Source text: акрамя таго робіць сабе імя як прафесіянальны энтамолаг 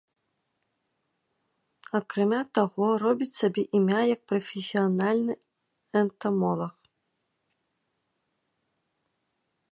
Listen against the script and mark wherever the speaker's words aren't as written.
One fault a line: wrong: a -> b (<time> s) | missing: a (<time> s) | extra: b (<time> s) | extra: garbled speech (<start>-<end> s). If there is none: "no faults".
no faults